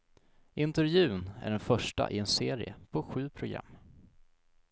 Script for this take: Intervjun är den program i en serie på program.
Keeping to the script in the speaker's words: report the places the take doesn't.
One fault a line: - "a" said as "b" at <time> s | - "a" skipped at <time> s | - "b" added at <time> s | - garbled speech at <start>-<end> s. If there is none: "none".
- "program" said as "första" at 1.6 s
- "sju" added at 3.0 s